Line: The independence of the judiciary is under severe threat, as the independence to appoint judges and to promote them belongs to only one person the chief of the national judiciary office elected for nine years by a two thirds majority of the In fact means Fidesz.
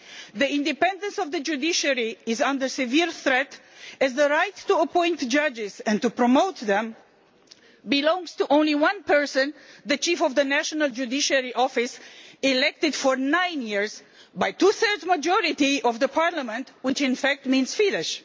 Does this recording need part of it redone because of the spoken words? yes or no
yes